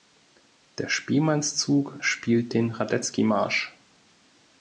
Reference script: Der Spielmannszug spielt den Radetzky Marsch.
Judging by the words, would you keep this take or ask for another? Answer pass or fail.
pass